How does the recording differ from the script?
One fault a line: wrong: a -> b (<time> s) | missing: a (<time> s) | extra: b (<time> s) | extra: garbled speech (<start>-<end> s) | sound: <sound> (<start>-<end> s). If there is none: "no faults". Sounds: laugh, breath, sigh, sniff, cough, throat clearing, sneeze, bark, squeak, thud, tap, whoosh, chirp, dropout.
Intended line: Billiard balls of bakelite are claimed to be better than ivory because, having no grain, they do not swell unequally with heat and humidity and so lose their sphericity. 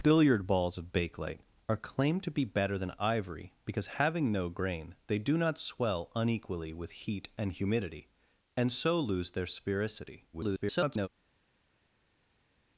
extra: garbled speech (10.3-11.1 s)